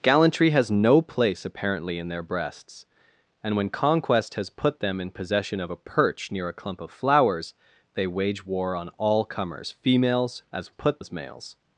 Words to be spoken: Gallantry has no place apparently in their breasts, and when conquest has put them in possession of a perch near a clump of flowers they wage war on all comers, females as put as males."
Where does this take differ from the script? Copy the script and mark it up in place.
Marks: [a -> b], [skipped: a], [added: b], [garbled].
Gallantry has no place apparently in their breasts, and when conquest has put them in possession of a perch near a clump of flowers they wage war on all comers, females as put as males."